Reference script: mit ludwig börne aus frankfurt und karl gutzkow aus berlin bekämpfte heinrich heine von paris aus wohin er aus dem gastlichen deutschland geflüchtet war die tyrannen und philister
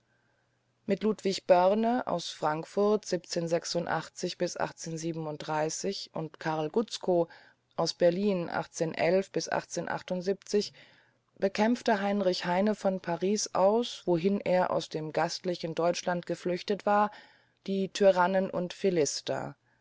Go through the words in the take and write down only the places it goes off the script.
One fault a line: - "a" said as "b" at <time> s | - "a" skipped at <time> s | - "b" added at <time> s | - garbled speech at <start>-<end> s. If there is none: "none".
none